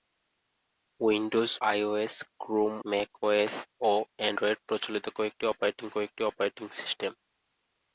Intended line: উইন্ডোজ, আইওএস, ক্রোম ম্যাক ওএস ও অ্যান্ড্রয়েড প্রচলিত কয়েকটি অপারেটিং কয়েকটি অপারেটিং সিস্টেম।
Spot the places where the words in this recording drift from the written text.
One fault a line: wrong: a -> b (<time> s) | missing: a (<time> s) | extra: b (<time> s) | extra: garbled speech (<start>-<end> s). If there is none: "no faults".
no faults